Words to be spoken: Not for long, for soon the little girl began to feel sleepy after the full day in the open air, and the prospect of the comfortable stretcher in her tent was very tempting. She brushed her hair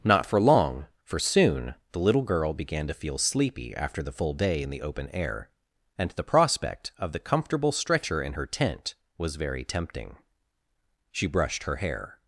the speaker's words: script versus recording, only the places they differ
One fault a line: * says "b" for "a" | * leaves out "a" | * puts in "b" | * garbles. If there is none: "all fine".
all fine